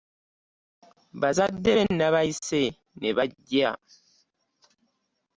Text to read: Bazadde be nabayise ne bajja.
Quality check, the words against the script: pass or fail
pass